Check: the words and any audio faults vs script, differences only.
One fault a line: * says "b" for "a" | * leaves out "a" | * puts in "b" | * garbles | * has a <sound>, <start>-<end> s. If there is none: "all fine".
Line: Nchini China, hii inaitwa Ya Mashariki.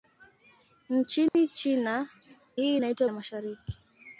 * has a dropout, 1.3-1.3 s